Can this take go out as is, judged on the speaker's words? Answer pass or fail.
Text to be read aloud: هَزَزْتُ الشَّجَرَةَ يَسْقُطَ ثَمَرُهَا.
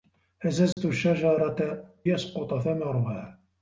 pass